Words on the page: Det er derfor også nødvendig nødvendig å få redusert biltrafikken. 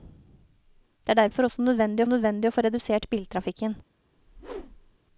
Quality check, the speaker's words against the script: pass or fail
pass